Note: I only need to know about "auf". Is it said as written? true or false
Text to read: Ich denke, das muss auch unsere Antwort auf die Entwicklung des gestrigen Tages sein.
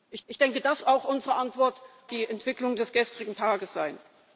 false